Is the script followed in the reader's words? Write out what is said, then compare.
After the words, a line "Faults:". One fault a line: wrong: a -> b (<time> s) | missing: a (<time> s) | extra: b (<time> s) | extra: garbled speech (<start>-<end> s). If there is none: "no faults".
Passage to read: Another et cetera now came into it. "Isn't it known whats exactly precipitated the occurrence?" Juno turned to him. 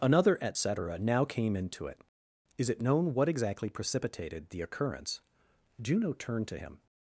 Another et cetera now came into it. "Is it known what exactly precipitated the occurrence?" Juno turned to him.
Faults:
wrong: Isn't -> Is (2.6 s)
wrong: whats -> what (3.1 s)